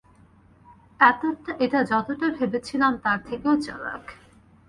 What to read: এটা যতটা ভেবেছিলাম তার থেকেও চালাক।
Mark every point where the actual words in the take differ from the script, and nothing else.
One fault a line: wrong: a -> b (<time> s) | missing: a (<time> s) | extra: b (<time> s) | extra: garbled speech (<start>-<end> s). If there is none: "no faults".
no faults